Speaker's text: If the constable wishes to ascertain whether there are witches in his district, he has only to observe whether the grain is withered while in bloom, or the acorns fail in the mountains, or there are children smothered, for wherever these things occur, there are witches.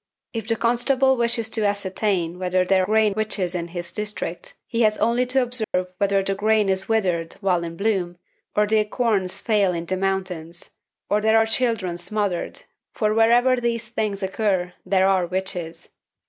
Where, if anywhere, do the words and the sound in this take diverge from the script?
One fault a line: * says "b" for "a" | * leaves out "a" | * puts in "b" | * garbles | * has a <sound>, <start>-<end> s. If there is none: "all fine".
* says "grain" for "are"
* has a dropout, 5.6-5.7 s